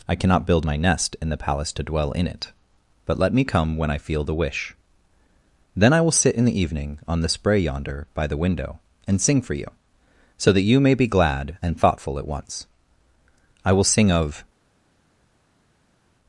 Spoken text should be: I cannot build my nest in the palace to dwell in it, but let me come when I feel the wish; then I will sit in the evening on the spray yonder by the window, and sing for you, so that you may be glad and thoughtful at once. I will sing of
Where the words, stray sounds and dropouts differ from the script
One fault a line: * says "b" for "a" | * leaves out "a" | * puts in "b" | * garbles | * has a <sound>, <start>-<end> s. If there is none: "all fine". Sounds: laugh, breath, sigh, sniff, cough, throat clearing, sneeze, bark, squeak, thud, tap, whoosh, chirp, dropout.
all fine